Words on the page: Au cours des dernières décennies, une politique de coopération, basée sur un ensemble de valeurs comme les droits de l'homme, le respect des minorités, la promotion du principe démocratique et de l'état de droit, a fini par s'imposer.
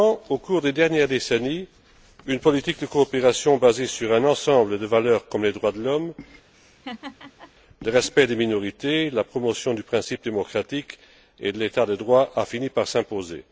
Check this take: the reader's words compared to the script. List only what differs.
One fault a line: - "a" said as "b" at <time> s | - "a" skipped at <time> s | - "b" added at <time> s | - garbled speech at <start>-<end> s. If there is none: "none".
none